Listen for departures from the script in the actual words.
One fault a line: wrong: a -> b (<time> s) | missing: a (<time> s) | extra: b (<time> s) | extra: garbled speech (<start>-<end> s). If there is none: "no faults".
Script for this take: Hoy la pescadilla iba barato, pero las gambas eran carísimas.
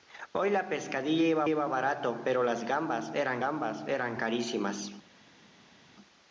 extra: iba (1.5 s)
extra: gambas eran (3.4 s)